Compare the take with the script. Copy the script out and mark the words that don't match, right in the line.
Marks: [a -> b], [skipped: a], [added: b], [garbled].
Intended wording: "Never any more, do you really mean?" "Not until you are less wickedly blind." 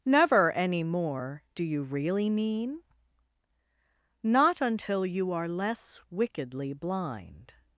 "Never any more, do you really mean?" "Not until you are less wickedly blind."